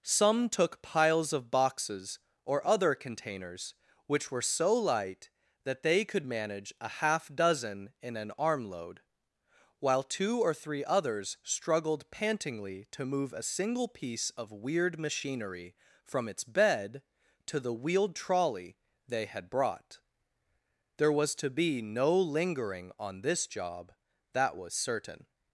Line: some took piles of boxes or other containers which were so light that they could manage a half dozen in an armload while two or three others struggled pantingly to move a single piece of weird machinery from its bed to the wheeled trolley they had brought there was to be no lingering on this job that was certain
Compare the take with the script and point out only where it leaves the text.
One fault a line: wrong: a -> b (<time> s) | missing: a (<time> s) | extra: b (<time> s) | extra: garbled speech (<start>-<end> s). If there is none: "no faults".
no faults